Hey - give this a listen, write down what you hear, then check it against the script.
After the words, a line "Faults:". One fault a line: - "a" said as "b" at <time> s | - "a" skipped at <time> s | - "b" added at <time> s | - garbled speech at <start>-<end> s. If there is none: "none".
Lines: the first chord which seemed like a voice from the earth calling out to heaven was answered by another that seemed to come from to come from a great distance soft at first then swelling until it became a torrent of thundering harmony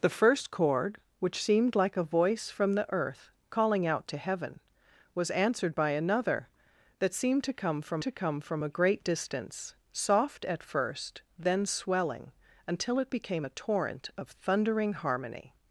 the first chord which seemed like a voice from the earth calling out to heaven was answered by another that seemed to come from to come from a great distance soft at first then swelling until it became a torrent of thundering harmony
Faults:
none